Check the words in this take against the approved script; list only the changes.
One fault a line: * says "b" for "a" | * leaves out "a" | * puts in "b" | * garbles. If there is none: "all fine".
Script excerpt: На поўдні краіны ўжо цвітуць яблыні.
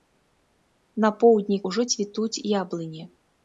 * leaves out "краіны"